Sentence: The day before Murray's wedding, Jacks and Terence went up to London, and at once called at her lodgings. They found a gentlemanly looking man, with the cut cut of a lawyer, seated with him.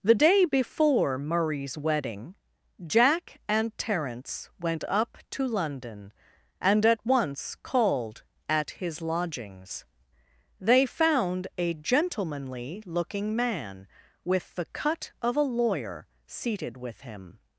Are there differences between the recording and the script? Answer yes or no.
yes